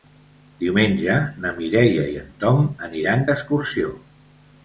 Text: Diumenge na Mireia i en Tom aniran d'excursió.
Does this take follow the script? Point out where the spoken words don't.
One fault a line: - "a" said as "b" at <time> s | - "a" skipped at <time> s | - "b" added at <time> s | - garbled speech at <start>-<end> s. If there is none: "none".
none